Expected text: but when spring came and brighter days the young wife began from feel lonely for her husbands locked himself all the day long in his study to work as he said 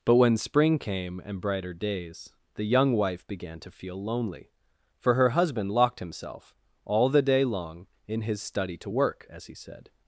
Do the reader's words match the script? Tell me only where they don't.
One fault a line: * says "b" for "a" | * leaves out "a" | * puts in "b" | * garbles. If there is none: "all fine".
* says "to" for "from"
* says "husband" for "husbands"